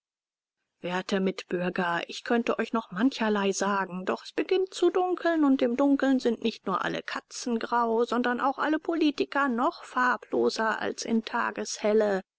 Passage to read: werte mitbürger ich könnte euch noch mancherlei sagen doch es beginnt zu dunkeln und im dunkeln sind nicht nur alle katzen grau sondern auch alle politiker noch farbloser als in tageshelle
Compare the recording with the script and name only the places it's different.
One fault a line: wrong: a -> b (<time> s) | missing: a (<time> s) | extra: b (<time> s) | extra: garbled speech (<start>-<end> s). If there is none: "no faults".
no faults